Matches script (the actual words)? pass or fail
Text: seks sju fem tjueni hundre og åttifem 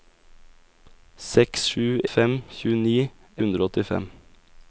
pass